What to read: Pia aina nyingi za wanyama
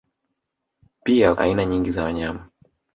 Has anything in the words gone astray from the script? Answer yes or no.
no